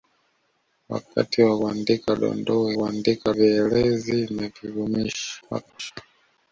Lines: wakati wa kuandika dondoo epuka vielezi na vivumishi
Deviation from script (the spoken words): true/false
true